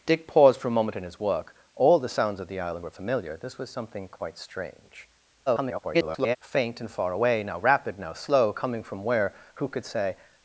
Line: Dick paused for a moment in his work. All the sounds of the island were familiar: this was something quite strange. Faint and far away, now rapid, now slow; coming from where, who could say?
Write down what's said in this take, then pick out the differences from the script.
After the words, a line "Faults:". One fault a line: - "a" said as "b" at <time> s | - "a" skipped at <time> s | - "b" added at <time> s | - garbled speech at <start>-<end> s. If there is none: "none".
Dick paused for a moment in his work. All the sounds of the island were familiar: this was something quite strange. [garbled] Faint and far away, now rapid, now slow; coming from where, who could say?
Faults:
- garbled speech at 5.5-6.4 s